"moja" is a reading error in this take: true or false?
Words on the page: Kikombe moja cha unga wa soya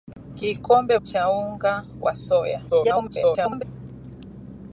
true